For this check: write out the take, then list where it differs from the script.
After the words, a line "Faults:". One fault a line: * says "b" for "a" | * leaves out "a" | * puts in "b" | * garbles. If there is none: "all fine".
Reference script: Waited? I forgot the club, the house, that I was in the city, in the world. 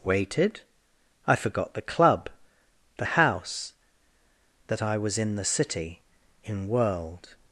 Waited? I forgot the club, the house, that I was in the city, in world.
Faults:
* leaves out "the"